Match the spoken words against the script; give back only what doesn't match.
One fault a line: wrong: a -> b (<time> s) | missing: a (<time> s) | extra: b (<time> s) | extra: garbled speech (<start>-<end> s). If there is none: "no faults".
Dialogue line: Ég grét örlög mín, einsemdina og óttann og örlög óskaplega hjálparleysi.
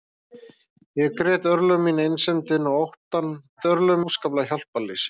no faults